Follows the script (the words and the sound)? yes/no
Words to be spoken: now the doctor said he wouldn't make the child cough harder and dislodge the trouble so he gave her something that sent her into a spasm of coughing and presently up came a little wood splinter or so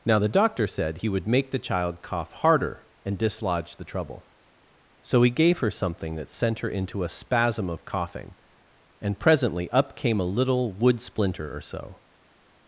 no